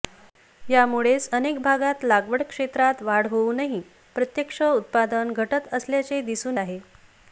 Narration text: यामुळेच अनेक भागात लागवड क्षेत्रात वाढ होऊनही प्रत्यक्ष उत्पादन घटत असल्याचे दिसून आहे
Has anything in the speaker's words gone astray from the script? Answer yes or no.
no